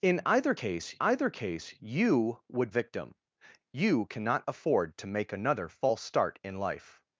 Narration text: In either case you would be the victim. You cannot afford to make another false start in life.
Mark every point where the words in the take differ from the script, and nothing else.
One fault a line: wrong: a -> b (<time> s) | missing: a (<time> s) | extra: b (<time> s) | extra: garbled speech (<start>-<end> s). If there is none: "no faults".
extra: either case (1.0 s)
missing: be the (2.7 s)